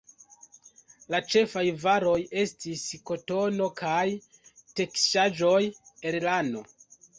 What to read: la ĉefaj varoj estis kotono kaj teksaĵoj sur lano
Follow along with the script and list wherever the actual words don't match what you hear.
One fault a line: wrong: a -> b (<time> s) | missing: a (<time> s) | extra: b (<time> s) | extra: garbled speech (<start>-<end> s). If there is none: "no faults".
wrong: sur -> el (6.1 s)